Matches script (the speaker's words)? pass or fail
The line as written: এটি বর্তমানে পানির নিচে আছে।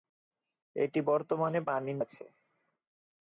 fail